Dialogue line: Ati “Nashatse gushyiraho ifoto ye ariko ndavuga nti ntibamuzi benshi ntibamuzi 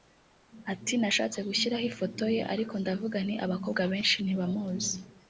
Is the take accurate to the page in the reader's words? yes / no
no